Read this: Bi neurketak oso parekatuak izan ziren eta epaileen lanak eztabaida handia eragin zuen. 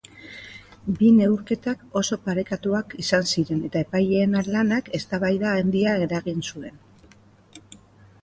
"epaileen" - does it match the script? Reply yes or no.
yes